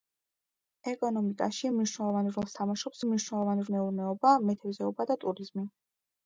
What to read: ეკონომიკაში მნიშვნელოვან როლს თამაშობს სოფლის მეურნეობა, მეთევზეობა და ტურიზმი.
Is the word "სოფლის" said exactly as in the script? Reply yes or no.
no